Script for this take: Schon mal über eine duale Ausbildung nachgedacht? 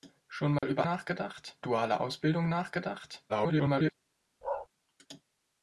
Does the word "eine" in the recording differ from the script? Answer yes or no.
yes